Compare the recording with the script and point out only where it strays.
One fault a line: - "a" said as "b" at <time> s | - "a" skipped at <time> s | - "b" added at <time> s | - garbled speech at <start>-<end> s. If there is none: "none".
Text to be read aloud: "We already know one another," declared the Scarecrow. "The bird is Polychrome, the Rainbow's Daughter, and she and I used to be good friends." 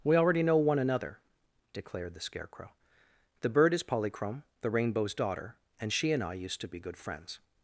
none